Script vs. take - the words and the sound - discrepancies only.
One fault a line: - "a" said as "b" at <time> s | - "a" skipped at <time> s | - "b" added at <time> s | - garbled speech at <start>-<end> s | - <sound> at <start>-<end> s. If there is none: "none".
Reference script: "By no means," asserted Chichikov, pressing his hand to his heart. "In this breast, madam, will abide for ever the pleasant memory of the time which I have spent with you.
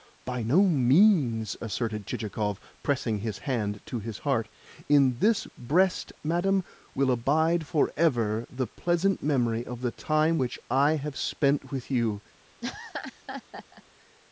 - laugh at 12.6-13.8 s